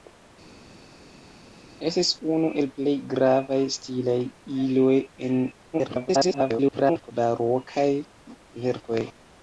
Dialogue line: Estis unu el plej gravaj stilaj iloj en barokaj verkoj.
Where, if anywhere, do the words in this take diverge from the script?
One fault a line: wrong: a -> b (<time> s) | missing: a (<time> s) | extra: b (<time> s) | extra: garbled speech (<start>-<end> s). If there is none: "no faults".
extra: garbled speech (5.7-7.1 s)